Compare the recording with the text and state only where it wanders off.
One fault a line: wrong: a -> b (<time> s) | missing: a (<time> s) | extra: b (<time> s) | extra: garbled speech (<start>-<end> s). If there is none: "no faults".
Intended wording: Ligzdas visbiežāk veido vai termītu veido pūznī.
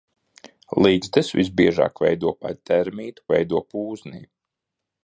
no faults